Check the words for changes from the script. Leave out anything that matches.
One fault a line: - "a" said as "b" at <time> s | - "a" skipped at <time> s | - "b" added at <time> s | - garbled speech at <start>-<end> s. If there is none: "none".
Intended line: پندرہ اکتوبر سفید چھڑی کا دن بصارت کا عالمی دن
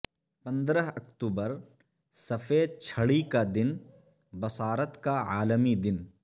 none